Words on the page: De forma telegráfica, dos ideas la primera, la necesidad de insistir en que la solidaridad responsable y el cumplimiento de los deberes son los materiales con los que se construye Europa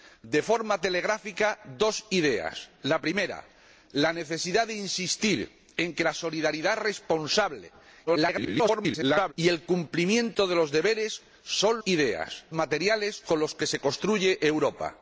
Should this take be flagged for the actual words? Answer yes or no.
yes